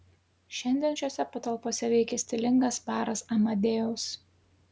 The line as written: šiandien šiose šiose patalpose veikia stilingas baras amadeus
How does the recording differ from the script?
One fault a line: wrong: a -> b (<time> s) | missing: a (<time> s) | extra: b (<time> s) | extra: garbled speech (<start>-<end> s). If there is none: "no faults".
missing: šiose (1.2 s)